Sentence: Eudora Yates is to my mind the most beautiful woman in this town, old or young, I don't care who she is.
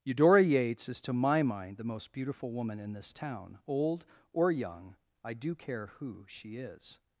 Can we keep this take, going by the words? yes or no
no